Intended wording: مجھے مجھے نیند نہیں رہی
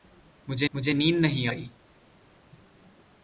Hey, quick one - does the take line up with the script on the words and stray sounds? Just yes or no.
yes